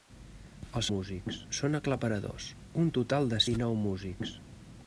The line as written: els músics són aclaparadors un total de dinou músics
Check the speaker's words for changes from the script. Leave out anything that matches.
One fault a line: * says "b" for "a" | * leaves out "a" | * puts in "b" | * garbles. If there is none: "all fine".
all fine